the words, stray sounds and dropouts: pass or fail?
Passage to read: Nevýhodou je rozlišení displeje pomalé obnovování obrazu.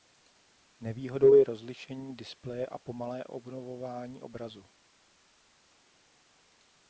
fail